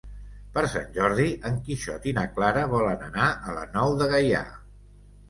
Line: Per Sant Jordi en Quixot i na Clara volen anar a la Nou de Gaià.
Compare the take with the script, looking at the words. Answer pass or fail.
pass